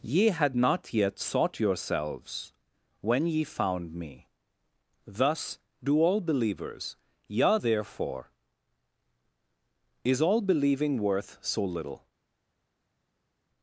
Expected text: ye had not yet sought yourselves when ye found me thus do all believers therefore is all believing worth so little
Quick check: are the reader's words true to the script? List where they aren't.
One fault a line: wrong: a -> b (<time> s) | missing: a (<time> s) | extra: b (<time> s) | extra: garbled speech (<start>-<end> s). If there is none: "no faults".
extra: yea (7.3 s)